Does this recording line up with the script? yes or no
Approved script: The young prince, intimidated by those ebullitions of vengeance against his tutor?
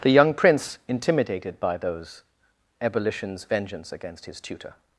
no